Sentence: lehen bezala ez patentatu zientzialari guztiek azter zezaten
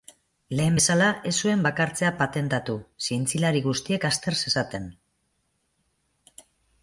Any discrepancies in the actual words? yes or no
yes